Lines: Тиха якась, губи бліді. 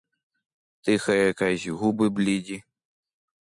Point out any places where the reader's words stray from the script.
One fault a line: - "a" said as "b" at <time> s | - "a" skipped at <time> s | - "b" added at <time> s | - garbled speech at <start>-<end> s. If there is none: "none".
none